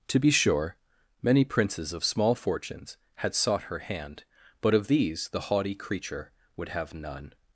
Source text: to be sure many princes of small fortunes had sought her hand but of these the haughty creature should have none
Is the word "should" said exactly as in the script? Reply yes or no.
no